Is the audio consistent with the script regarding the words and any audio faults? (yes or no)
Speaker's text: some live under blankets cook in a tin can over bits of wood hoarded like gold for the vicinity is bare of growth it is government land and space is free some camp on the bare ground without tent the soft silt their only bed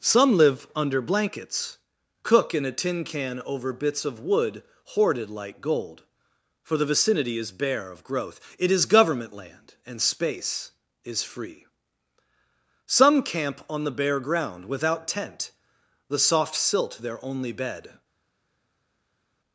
yes